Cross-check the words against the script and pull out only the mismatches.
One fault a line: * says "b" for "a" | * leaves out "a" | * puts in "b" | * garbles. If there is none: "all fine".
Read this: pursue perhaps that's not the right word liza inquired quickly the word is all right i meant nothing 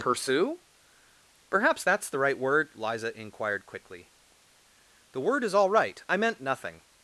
* leaves out "not"